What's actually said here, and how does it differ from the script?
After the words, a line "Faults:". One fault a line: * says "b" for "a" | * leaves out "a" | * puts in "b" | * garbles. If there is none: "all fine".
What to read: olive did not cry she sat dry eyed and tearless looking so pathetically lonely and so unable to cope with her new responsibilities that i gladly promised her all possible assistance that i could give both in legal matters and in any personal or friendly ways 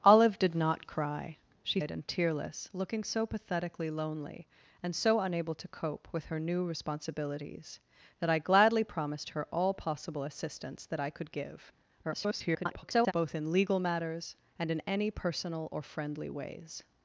olive did not cry she eyed and tearless looking so pathetically lonely and so unable to cope with her new responsibilities that i gladly promised her all possible assistance that i could give [garbled] both in legal matters and in any personal or friendly ways
Faults:
* leaves out "sat dry"
* garbles